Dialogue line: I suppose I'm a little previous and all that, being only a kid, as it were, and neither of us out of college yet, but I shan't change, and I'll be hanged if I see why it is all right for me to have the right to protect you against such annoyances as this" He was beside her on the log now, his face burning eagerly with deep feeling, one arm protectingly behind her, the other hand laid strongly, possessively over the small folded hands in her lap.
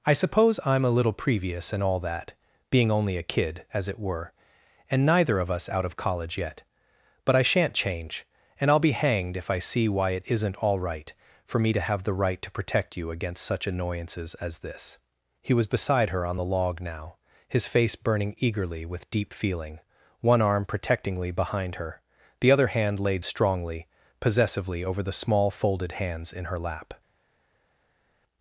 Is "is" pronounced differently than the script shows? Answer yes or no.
yes